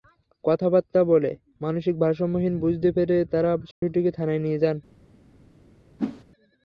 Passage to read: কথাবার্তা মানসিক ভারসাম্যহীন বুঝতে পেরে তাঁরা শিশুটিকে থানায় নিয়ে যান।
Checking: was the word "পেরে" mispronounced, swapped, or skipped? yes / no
no